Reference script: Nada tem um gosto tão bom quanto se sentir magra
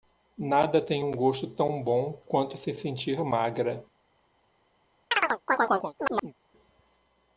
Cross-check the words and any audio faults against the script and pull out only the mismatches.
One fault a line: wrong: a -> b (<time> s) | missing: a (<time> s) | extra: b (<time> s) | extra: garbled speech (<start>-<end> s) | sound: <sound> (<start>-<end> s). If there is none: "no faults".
sound: chirp (5.1-6.3 s)